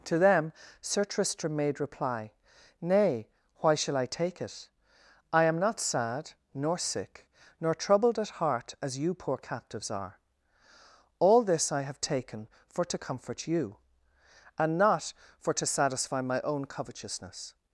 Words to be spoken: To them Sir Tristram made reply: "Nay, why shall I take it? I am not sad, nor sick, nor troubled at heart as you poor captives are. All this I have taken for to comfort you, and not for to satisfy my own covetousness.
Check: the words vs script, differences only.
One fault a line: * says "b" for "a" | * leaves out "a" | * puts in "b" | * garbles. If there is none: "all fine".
all fine